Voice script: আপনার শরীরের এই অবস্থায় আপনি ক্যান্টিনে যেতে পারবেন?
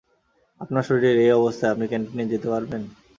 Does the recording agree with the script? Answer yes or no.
yes